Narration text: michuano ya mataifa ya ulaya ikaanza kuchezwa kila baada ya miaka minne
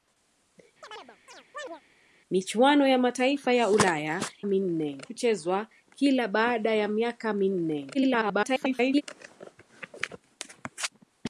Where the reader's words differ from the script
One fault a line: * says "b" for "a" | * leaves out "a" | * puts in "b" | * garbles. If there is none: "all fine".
* says "minne" for "ikaanza"
* garbles